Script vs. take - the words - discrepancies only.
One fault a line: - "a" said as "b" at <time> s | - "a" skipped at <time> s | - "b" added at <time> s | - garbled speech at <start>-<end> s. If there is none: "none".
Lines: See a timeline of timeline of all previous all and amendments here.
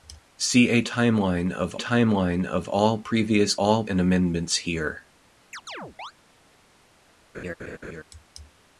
none